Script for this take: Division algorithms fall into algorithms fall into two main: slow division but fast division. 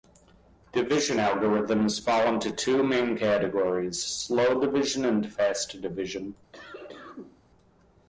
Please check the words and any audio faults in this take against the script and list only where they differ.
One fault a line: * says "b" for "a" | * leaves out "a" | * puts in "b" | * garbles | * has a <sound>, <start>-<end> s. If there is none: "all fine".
* leaves out "algorithms fall into"
* puts in "categories"
* says "and" for "but"
* has a cough, 6.5-7.4 s